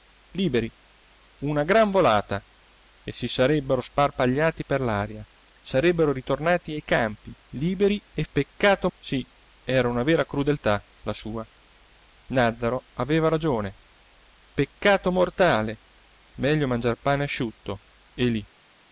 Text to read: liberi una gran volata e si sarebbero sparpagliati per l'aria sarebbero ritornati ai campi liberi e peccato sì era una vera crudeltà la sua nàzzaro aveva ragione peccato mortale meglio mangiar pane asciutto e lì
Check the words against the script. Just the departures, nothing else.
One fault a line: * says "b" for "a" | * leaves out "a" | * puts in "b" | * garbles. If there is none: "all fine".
all fine